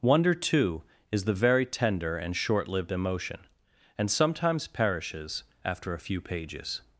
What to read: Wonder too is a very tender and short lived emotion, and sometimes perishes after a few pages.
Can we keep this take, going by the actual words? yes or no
no